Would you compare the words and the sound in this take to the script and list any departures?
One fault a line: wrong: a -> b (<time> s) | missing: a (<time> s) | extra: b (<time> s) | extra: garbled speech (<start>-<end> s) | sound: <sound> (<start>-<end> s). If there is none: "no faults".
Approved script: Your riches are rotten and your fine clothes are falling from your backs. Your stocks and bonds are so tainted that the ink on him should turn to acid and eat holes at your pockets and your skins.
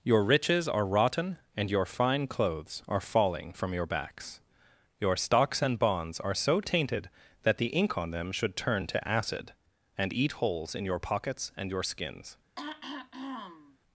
wrong: him -> them (8.1 s)
wrong: at -> in (10.7 s)
sound: throat clearing (12.6-13.8 s)